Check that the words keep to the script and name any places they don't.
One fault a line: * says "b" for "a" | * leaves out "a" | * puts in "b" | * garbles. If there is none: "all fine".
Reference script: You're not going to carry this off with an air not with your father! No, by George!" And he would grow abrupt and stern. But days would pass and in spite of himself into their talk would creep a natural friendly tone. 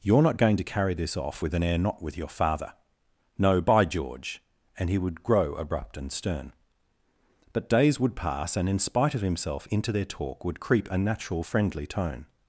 all fine